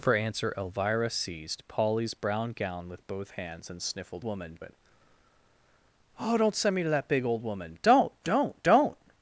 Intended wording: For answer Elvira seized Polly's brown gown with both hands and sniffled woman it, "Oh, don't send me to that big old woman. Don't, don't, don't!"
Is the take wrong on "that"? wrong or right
right